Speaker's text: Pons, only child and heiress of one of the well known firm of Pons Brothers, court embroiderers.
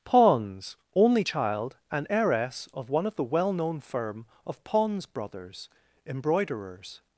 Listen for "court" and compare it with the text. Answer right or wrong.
wrong